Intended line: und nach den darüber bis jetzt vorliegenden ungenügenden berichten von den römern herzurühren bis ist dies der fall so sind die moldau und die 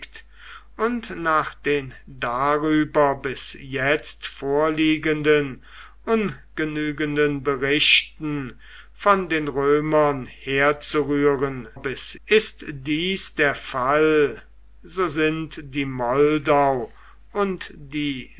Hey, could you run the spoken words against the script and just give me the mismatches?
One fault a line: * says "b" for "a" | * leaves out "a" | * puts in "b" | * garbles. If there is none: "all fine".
all fine